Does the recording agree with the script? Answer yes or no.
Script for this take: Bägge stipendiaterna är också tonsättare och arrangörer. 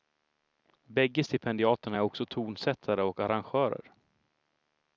yes